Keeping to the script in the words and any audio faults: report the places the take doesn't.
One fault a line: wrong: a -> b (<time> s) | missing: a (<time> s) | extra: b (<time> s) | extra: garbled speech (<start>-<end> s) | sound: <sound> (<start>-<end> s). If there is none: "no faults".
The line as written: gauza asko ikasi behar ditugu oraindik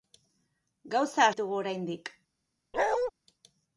missing: asko ikasi behar (1.3 s)
sound: bark (2.7-3.1 s)